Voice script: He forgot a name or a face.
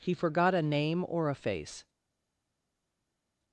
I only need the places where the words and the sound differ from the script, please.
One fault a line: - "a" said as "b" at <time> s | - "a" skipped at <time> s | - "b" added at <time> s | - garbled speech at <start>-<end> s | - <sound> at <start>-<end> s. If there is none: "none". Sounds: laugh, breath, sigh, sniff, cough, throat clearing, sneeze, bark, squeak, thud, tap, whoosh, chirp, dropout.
none